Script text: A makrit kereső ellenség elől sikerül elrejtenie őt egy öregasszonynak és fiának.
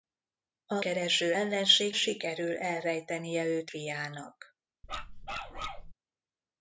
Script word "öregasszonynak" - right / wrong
wrong